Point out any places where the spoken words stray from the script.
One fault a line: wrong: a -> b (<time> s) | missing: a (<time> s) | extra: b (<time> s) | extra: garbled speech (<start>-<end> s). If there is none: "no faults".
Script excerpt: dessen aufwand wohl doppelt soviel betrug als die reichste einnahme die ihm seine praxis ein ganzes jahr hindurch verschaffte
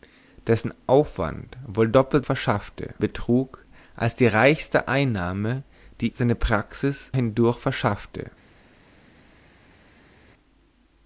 wrong: soviel -> verschaffte (2.2 s)
missing: ihm (6.1 s)
missing: ein ganzes jahr (7.1 s)